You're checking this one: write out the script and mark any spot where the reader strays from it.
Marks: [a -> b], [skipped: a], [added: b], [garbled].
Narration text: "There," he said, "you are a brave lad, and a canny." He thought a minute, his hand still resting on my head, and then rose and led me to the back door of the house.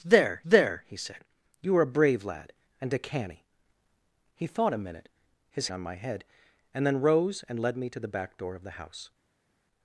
"There," [added: there] he said, "you are a brave lad, and a canny." He thought a minute, his [skipped: hand still resting] on my head, and then rose and led me to the back door of the house.